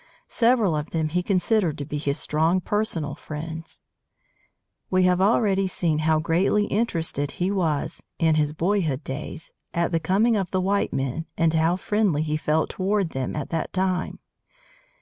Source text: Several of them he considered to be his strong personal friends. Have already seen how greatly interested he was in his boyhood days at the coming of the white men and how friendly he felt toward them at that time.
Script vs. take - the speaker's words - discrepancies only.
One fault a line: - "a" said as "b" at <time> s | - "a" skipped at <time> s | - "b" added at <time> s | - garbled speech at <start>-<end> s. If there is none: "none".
- "We" added at 4.9 s